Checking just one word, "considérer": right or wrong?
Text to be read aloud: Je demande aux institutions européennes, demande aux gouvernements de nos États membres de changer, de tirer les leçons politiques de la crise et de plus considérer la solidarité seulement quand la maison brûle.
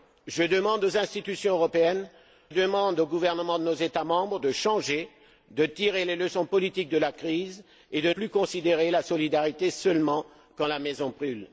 right